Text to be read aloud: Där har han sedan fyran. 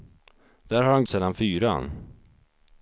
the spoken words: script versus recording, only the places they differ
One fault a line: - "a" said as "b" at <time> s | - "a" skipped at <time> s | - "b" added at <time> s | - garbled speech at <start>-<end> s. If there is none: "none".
none